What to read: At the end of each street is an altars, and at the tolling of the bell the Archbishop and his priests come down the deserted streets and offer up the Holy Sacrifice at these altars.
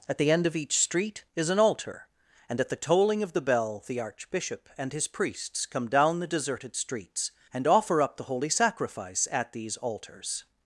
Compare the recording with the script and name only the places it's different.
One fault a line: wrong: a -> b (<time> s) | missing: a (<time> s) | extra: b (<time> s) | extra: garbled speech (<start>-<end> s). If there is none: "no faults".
wrong: altars -> altar (1.6 s)